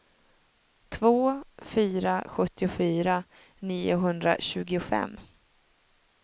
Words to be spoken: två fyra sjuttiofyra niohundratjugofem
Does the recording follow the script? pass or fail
pass